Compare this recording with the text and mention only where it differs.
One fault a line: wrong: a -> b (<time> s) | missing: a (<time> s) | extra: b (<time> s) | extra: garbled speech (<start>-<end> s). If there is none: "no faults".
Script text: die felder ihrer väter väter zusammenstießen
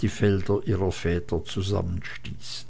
missing: väter (1.4 s)